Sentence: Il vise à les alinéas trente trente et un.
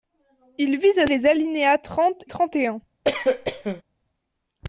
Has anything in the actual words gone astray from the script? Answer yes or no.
no